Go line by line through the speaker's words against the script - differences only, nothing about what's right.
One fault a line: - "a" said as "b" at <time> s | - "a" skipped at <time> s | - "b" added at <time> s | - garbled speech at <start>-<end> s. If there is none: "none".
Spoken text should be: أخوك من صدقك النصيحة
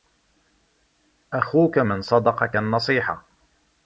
none